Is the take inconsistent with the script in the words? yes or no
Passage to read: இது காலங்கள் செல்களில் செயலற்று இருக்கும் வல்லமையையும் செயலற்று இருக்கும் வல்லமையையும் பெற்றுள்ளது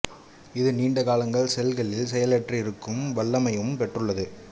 yes